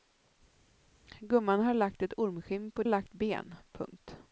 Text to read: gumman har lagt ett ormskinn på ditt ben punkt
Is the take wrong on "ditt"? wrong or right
wrong